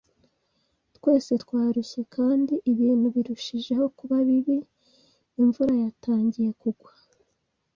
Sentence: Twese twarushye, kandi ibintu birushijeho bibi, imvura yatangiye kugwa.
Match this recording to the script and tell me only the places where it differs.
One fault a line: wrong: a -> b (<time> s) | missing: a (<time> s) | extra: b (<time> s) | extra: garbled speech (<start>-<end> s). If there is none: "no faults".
extra: kuba (4.0 s)